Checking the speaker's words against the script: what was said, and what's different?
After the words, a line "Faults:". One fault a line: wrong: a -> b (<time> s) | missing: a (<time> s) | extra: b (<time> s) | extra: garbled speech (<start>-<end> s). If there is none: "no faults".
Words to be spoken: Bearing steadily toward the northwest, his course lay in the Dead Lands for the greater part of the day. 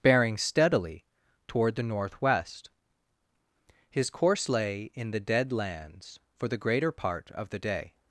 Bearing steadily toward the northwest, his course lay in the Dead Lands for the greater part of the day.
Faults:
no faults